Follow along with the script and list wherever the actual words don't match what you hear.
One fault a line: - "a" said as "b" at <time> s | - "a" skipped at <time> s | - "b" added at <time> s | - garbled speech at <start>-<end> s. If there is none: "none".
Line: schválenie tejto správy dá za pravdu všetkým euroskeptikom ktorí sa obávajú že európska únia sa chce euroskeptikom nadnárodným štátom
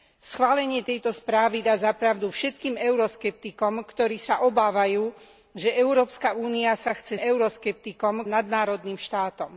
none